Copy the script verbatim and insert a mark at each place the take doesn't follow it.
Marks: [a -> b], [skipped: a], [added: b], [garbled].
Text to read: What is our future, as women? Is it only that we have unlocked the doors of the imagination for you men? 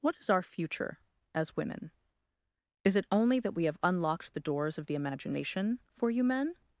What is our future, as women? Is it only that we have unlocked the doors of the imagination for you men?